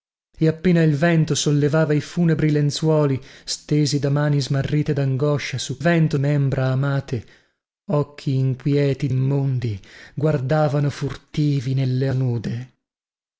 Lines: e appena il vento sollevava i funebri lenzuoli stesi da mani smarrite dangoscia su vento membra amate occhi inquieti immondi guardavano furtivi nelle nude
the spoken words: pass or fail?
pass